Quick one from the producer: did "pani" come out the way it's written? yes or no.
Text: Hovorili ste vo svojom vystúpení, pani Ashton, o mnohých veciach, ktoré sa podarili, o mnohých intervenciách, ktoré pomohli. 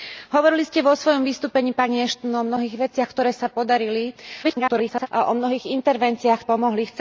yes